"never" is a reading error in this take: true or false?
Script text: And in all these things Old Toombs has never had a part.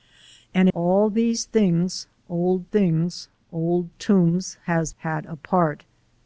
true